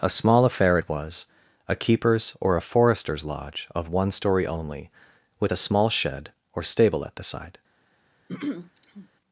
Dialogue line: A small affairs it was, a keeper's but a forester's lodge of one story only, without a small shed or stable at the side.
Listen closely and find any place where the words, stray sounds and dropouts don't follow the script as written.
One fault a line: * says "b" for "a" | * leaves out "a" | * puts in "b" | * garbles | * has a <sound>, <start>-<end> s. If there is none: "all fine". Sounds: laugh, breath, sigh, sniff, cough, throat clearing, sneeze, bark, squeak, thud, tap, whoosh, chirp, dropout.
* says "affair" for "affairs"
* says "or" for "but"
* says "with" for "without"
* has a throat clearing, 8.3-9.1 s